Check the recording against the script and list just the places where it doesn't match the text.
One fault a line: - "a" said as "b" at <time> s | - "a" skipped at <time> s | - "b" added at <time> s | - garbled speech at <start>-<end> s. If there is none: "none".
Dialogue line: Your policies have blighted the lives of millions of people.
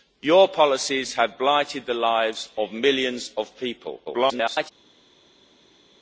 - garbled speech at 4.0-4.7 s